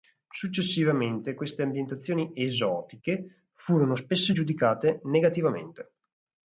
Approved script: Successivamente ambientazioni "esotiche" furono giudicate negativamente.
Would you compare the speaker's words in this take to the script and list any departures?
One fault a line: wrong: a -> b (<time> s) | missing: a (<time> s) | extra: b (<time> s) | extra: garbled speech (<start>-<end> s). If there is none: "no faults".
extra: queste (1.4 s)
extra: spesso (3.9 s)